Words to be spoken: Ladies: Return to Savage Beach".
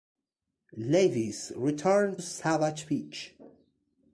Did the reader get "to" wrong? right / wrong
wrong